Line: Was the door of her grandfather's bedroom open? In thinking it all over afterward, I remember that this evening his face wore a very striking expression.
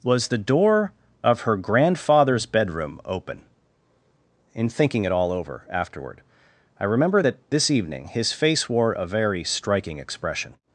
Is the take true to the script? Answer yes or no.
yes